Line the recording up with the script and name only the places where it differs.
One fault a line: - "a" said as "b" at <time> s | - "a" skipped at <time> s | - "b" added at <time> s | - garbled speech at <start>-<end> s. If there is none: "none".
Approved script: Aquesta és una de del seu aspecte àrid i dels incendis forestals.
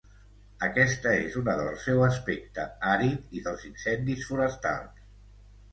none